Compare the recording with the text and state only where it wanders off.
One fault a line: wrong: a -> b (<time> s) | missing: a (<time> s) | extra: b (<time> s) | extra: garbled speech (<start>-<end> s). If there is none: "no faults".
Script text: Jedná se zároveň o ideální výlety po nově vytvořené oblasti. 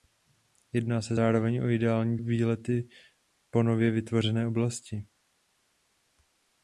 no faults